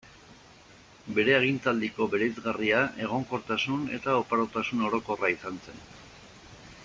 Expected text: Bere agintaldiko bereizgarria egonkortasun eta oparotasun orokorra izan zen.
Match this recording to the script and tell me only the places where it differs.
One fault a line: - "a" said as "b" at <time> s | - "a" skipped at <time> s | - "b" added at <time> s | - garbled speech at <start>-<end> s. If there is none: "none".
none